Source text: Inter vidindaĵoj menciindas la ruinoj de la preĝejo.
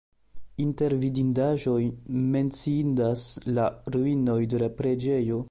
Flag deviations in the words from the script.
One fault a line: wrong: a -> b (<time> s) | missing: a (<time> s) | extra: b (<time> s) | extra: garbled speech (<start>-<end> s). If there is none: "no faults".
no faults